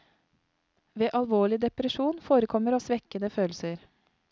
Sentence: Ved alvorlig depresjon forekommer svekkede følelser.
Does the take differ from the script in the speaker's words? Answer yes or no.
no